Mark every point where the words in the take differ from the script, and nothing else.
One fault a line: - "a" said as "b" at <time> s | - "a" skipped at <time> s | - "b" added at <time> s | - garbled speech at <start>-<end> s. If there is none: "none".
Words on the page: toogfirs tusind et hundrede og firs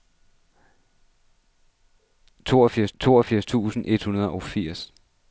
- "toogfirs" added at 3.0 s